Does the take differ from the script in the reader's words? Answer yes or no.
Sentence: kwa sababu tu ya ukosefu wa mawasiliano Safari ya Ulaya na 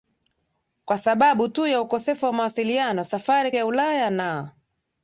no